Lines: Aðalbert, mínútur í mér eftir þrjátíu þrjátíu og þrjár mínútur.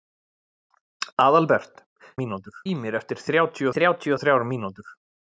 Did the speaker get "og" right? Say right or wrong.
right